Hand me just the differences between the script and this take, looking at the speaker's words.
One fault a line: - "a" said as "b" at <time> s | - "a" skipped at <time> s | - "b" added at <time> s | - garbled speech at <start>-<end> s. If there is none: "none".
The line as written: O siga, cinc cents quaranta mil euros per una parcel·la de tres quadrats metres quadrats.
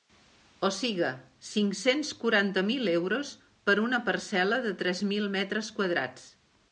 - "quadrats" said as "mil" at 5.1 s